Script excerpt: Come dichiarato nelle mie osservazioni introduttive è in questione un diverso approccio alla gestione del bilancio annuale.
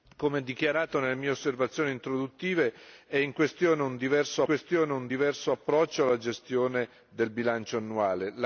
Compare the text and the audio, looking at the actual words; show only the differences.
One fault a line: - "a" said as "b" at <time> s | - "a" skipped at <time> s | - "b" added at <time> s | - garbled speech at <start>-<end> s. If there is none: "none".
- "questione un diverso" added at 4.4 s